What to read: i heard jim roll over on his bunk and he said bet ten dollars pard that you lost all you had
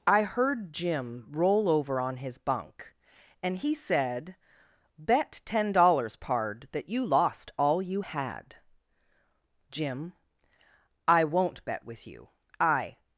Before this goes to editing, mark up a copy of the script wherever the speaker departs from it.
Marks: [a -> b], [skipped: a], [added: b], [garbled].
i heard jim roll over on his bunk and he said bet ten dollars pard that you lost all you had [added: jim i won't bet with you i]